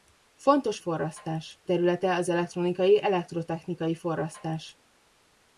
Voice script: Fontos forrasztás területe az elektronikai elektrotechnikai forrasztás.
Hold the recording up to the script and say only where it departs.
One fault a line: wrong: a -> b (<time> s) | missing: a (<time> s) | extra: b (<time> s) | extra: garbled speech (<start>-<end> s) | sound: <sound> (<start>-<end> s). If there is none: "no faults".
no faults